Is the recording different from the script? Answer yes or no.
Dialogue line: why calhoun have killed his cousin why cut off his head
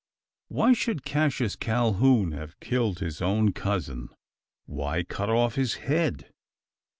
yes